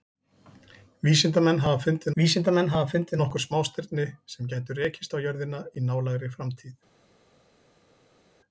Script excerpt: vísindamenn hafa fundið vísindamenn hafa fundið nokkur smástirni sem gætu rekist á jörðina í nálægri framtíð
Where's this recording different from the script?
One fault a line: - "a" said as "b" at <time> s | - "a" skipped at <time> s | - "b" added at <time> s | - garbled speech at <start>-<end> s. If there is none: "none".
none